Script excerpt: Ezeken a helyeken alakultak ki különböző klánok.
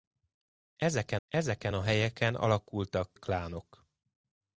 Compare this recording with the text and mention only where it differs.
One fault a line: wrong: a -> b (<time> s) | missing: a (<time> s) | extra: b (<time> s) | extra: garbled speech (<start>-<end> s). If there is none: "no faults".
extra: ezeken (1.3 s)
missing: ki különböző (3.1 s)